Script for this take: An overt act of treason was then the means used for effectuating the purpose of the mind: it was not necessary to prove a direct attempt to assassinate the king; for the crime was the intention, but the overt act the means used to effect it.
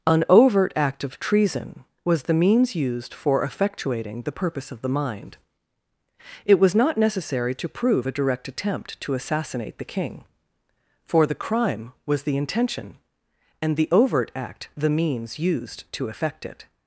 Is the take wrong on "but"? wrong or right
wrong